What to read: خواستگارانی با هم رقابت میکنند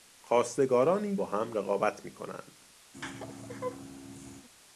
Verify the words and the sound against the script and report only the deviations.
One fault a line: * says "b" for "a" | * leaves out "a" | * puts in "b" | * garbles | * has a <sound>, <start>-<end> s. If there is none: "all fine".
* has a laugh, 2.9-4.5 s